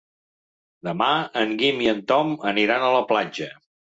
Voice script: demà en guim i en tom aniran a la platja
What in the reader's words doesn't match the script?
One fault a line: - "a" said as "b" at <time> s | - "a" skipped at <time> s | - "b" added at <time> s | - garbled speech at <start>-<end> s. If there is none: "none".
none